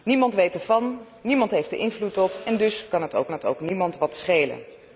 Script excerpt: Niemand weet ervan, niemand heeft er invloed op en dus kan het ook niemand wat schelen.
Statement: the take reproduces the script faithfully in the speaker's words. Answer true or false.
false